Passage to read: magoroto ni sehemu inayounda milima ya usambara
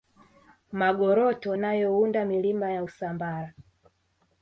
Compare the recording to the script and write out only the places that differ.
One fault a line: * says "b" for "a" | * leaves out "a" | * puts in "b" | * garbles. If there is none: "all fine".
* leaves out "ni sehemu"